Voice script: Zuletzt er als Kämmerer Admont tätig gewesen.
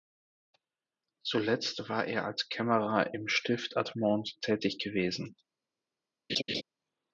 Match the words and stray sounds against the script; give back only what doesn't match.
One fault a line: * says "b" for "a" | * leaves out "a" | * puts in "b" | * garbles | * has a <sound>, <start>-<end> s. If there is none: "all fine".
* puts in "war"
* puts in "im Stift"
* has a laugh, 6.3-6.6 s